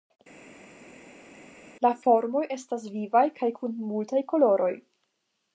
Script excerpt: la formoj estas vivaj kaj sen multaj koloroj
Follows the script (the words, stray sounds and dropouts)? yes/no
no